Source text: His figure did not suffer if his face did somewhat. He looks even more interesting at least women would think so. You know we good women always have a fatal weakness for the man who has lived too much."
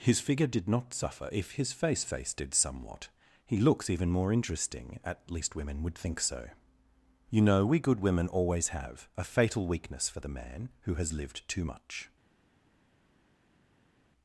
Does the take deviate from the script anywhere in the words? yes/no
yes